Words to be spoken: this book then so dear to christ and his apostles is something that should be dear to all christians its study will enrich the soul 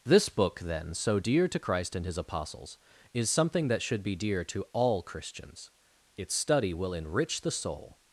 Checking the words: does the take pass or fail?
pass